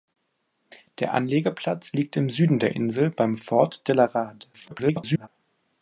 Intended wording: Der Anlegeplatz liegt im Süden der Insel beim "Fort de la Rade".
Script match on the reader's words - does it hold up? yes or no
no